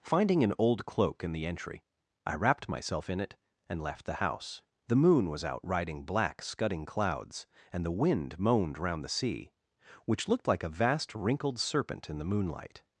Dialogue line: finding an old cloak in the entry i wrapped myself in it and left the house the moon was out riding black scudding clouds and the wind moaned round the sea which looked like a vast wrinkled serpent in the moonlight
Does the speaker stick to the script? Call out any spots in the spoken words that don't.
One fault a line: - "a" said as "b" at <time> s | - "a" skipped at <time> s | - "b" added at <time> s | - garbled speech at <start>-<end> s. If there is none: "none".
none